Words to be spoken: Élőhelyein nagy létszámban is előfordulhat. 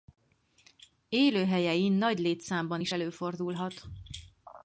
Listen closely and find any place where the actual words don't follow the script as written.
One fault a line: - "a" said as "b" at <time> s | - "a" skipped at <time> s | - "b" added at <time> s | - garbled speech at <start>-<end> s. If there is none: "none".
none